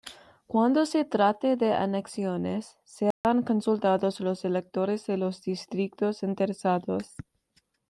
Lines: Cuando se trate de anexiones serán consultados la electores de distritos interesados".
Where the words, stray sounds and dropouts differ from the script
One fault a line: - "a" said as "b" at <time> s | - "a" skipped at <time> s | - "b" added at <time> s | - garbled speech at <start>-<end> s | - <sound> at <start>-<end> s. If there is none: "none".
- dropout at 3.1-3.2 s
- "la" said as "los" at 4.2 s
- "los" added at 5.2 s